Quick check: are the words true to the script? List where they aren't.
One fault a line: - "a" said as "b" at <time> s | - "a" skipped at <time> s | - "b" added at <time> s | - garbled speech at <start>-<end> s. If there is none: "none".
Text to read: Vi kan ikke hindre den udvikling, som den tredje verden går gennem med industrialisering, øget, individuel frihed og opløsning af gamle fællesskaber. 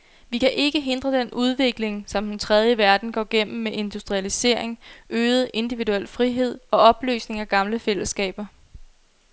none